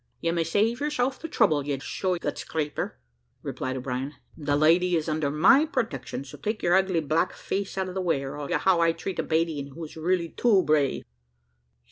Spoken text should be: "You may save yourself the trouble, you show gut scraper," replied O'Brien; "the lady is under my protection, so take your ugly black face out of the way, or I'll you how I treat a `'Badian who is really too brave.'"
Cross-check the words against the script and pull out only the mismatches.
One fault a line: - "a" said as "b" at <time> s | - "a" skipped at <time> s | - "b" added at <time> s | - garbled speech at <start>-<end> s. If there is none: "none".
none